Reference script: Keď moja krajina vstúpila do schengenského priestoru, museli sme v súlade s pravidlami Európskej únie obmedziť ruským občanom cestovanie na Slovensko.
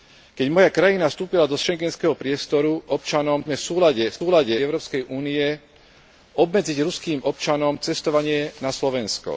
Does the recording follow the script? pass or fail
fail